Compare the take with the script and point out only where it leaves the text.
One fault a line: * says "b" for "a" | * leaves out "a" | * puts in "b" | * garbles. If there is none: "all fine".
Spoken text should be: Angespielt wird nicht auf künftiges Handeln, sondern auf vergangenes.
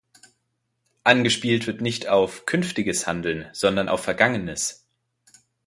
all fine